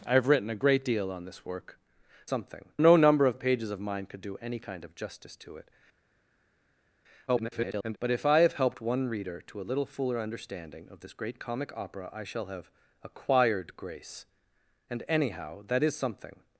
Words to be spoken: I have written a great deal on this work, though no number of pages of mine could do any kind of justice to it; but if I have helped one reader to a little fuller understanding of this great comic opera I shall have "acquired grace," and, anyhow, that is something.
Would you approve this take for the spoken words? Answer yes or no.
no